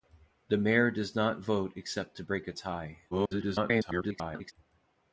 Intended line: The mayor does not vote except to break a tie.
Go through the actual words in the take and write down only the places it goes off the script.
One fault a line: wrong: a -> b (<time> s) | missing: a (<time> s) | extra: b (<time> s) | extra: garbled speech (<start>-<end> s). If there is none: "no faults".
extra: garbled speech (3.1-4.5 s)